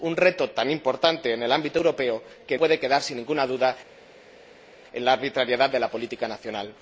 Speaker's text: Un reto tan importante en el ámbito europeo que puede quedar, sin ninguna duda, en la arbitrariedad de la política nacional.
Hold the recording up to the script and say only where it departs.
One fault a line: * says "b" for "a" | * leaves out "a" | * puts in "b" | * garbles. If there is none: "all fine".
all fine